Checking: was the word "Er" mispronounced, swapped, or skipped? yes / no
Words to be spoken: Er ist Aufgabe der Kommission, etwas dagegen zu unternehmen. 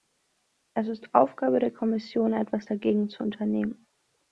yes